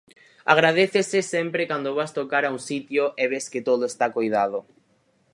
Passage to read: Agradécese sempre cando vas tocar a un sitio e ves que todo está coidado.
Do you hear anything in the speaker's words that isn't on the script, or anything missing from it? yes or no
no